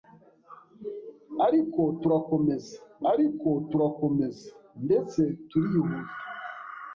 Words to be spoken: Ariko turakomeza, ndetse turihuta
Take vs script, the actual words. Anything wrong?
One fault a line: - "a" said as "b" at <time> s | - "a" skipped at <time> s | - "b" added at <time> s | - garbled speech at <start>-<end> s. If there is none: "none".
- "ariko turakomeza" added at 3.1 s